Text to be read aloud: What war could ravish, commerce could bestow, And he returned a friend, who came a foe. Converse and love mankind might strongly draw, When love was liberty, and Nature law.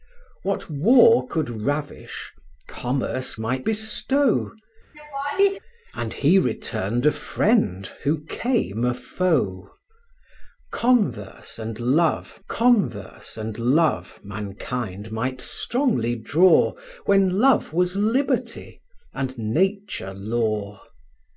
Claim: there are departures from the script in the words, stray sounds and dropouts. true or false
true